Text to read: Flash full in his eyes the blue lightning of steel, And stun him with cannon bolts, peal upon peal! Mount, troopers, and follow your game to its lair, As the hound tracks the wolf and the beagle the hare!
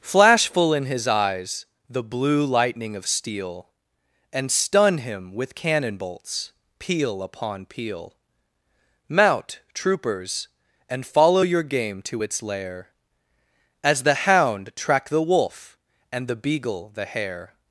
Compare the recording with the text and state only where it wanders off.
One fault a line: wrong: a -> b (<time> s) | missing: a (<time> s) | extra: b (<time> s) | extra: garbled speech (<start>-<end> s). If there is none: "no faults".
wrong: tracks -> track (14.8 s)